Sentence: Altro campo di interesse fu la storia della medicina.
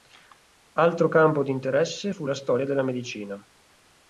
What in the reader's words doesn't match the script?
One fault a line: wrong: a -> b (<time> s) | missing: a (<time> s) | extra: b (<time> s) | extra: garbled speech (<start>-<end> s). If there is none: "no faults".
no faults